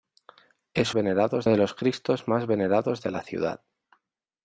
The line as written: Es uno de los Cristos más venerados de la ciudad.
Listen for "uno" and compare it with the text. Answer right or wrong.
wrong